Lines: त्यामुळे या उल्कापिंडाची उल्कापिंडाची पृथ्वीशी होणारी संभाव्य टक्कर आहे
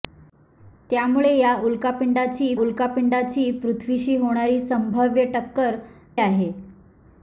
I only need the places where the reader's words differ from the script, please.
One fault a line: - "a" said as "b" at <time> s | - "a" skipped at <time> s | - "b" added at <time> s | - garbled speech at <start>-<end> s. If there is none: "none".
none